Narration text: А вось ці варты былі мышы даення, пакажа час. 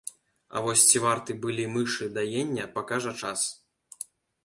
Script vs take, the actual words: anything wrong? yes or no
no